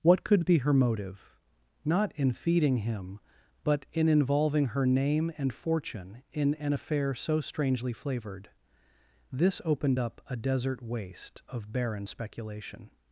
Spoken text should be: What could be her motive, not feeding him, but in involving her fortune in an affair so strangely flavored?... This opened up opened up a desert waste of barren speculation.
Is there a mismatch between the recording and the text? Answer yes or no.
yes